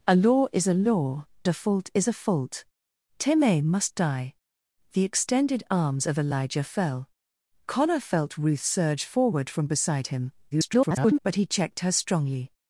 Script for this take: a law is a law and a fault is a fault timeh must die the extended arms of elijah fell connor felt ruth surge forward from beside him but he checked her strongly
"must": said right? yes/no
yes